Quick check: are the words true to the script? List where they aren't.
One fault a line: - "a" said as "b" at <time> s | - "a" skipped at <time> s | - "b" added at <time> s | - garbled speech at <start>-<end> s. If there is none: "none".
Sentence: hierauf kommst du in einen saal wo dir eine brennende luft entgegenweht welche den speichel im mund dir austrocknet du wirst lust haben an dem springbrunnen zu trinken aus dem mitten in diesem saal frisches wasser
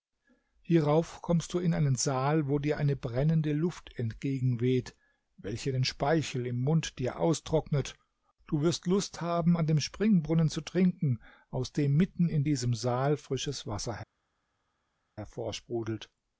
none